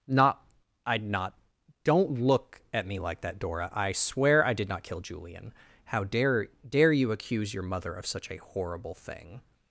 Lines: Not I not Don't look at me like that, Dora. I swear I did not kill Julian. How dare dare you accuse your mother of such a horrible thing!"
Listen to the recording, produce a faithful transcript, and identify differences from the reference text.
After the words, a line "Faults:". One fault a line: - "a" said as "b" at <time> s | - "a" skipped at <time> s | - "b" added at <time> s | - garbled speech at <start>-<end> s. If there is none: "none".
Not I not Don't look at me like that, Dora. I swear I did not kill Julian. How dare dare you accuse your mother of such a horrible thing!"
Faults:
none